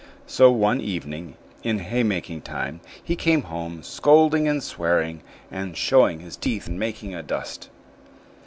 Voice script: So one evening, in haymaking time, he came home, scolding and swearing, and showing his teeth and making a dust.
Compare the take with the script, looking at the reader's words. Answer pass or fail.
pass